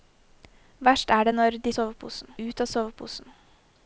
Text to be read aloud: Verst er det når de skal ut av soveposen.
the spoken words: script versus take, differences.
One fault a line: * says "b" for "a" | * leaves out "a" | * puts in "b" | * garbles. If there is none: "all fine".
* says "soveposen" for "skal"